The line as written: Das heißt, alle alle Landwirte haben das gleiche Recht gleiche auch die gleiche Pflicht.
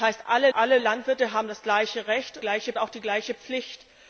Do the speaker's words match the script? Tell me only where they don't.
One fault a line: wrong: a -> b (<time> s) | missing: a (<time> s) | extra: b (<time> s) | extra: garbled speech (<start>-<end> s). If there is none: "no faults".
no faults